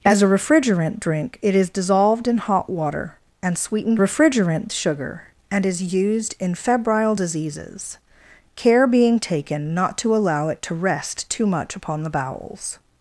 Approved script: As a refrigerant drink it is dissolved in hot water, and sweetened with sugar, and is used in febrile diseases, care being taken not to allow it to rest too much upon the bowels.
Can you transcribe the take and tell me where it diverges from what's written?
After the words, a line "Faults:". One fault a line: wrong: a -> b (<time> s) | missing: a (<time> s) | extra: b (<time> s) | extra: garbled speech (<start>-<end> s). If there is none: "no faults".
As a refrigerant drink it is dissolved in hot water, and sweetened refrigerant sugar, and is used in febrile diseases, care being taken not to allow it to rest too much upon the bowels.
Faults:
wrong: with -> refrigerant (4.0 s)